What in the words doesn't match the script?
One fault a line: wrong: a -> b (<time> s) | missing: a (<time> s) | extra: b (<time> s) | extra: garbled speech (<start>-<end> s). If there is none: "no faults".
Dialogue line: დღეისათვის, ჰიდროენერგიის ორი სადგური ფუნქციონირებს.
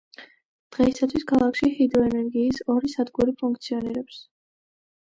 extra: ქალაქში (1.3 s)